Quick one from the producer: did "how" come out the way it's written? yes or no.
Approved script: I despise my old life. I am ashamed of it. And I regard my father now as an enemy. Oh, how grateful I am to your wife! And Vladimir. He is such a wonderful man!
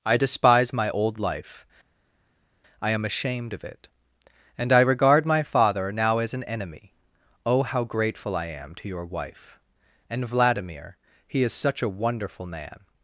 yes